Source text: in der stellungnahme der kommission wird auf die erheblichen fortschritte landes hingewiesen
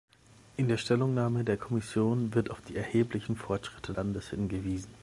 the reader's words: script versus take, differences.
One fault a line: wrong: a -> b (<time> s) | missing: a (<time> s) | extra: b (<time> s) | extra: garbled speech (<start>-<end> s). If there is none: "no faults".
no faults